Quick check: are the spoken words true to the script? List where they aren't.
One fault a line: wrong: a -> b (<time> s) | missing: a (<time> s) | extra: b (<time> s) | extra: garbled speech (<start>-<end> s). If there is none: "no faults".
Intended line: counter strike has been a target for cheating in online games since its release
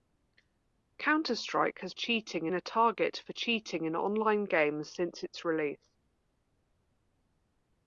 wrong: been -> cheating (1.9 s)